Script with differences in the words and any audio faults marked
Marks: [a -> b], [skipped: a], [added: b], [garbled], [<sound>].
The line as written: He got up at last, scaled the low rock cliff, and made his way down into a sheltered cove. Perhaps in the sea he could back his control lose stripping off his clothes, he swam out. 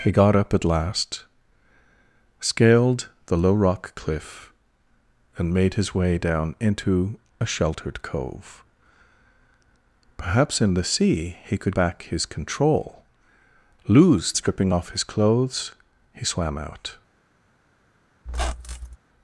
He got up at last, scaled the low rock cliff, and made his way down into a sheltered cove. Perhaps in the sea he could back his control lose stripping off his clothes, he swam out. [squeak]